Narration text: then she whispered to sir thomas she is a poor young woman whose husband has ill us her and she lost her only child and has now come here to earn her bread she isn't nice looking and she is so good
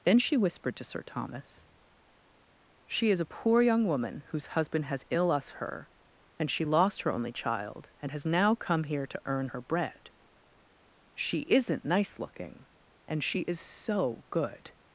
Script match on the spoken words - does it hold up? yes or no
yes